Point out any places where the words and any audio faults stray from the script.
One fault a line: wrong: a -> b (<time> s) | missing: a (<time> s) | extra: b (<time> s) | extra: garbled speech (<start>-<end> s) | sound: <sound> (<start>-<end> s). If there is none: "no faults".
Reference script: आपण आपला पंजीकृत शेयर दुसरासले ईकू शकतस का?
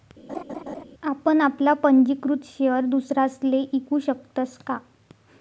sound: laugh (0.3-0.8 s)